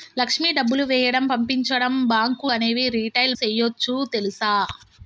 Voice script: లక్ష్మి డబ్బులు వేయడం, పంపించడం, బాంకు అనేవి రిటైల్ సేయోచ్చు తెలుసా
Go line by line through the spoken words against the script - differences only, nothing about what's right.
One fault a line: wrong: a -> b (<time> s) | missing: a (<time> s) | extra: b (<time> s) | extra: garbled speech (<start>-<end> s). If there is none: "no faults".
no faults